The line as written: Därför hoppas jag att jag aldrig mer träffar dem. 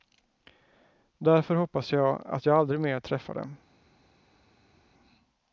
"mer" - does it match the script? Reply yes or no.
yes